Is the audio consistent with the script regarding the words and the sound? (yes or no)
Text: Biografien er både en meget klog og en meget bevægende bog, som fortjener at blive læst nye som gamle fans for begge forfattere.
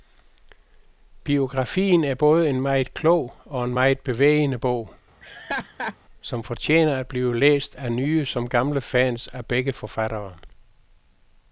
no